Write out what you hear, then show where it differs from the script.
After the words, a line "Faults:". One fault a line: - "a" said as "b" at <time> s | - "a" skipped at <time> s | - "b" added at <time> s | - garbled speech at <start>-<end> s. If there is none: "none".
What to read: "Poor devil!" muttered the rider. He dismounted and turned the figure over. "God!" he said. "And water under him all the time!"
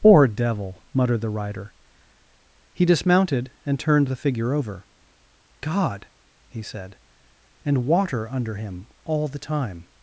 "Poor devil!" muttered the rider. He dismounted and turned the figure over. "God!" he said. "And water under him all the time!"
Faults:
none